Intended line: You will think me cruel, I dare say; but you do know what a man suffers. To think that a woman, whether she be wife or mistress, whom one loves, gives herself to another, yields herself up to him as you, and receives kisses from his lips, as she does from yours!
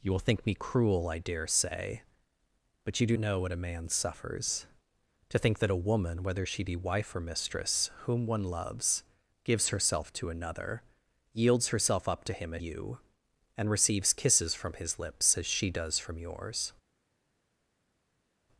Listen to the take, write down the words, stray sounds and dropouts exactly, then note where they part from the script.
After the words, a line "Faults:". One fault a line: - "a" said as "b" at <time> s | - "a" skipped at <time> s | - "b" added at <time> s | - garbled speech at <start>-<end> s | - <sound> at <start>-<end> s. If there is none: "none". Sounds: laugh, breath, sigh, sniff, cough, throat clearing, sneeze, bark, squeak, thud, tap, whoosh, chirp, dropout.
You will think me cruel, I dare say; but you do know what a man suffers. To think that a woman, whether she be wife or mistress, whom one loves, gives herself to another, yields herself up to him as you, and receives kisses from his lips, as she does from yours!
Faults:
none